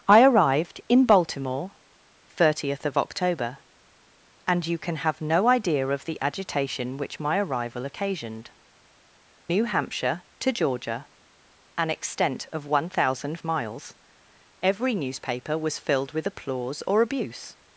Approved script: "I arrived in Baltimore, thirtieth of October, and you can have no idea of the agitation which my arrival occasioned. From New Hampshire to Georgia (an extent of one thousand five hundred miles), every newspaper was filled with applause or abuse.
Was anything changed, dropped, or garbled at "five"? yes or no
yes